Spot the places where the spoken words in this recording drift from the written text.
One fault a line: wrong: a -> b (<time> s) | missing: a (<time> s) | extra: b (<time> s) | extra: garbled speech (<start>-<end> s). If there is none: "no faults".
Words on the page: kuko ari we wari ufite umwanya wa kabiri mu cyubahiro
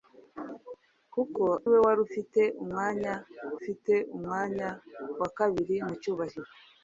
missing: ari (1.4 s)
extra: ufite umwanya (3.6 s)